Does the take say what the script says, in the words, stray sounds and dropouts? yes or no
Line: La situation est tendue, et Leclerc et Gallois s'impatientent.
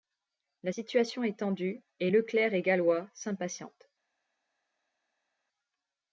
yes